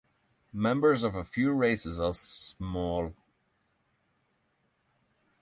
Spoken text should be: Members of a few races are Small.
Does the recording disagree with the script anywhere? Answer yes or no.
no